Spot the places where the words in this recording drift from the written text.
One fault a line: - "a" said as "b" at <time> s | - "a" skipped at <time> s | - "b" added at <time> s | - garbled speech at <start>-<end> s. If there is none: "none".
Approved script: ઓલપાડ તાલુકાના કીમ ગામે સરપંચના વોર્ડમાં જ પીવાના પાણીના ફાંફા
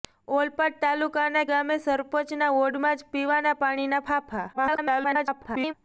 - "કીમ" skipped at 1.4 s
- garbled speech at 4.5-5.7 s